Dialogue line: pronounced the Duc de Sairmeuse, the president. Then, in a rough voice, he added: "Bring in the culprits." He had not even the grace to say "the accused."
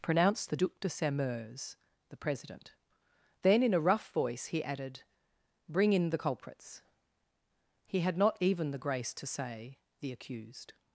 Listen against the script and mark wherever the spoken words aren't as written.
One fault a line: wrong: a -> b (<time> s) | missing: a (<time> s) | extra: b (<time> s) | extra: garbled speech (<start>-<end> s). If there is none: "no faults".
no faults